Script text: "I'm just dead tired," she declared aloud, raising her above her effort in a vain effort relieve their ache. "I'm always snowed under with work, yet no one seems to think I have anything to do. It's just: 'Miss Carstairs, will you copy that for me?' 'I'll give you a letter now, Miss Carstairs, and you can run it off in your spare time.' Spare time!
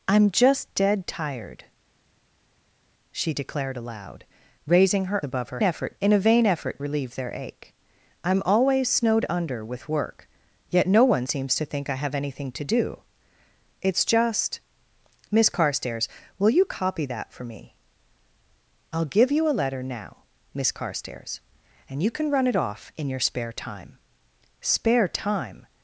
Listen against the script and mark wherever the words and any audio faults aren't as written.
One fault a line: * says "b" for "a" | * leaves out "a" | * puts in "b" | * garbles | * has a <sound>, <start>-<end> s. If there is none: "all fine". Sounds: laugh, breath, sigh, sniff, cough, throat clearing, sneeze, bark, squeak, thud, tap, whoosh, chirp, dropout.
all fine